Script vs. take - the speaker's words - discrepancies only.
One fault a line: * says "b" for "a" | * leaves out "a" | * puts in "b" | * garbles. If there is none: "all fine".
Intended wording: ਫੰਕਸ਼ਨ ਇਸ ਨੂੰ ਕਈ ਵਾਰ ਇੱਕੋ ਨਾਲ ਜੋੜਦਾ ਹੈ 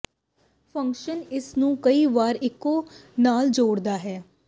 all fine